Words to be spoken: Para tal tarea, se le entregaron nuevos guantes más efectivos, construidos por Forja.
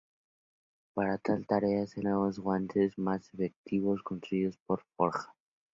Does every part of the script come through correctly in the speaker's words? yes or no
no